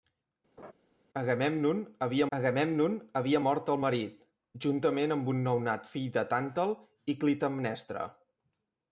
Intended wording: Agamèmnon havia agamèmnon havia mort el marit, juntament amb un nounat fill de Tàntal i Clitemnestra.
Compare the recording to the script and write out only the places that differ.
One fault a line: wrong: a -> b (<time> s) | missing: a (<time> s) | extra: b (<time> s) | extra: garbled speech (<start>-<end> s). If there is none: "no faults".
no faults